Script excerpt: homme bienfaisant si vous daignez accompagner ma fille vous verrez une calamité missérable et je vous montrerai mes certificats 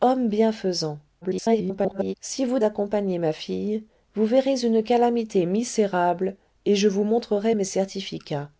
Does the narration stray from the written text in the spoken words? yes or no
yes